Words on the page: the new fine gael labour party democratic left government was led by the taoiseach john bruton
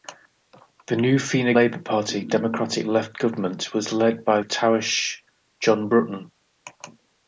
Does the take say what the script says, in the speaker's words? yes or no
no